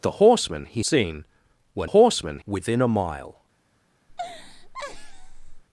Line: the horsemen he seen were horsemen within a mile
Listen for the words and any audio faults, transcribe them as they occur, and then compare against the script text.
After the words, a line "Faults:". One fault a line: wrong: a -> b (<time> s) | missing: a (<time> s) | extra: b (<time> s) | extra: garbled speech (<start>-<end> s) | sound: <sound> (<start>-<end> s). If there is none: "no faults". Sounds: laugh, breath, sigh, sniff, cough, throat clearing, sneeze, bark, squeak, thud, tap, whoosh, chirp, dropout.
the horsemen he seen were horsemen within a mile
Faults:
sound: laugh (4.1-5.6 s)